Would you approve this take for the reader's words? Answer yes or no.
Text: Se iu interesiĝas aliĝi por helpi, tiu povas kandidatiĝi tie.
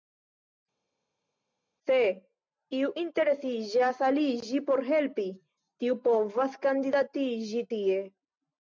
yes